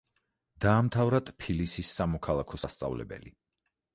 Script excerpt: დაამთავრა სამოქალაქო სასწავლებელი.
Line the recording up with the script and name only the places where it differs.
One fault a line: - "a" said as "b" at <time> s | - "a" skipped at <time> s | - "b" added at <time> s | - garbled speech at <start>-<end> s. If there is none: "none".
- "ტფილისის" added at 1.3 s